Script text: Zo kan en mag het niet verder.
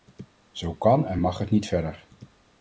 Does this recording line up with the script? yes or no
yes